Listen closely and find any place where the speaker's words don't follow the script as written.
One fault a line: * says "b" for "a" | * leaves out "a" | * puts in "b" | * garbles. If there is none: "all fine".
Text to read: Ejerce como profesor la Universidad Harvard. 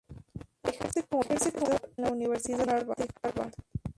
all fine